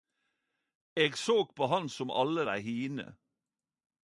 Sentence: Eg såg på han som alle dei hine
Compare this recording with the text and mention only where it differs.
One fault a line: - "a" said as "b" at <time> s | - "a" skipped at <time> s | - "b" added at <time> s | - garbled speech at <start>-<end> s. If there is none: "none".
none